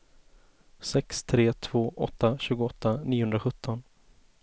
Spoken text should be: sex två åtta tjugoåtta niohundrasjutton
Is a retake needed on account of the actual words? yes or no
yes